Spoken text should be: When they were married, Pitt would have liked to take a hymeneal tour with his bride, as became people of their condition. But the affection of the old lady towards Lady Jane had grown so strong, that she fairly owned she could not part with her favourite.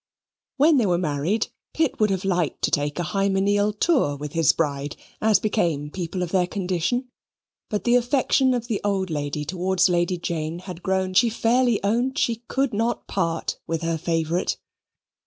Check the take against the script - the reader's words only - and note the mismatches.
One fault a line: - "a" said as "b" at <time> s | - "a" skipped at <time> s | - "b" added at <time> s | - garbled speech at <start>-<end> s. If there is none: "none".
- "so strong that" skipped at 11.2 s